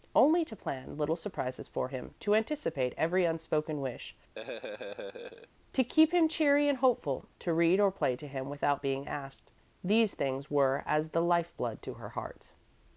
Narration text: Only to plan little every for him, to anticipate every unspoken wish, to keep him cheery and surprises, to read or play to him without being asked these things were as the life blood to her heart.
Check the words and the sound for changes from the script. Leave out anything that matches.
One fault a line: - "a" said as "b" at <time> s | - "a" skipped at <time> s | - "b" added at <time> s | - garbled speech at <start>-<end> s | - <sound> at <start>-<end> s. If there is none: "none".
- "every" said as "surprises" at 1.1 s
- laugh at 4.4-5.5 s
- "surprises" said as "hopeful" at 6.8 s